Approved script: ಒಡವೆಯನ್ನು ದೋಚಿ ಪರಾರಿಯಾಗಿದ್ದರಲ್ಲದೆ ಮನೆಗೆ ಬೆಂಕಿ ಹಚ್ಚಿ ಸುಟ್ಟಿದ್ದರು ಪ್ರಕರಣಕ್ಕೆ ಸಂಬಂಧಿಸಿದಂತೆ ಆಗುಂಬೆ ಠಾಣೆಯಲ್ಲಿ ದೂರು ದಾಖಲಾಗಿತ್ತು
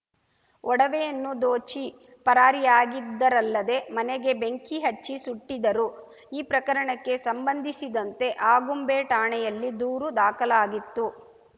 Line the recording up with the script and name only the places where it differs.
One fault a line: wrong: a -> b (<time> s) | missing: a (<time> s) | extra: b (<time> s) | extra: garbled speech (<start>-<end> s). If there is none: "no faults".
extra: ಈ (6.3 s)